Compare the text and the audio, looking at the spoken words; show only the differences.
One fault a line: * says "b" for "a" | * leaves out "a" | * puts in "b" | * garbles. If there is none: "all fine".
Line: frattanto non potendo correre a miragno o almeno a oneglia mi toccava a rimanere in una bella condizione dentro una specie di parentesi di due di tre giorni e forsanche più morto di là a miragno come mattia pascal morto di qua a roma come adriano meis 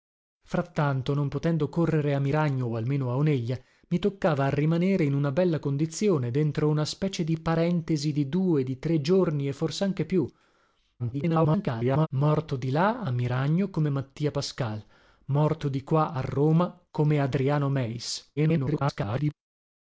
* garbles
* garbles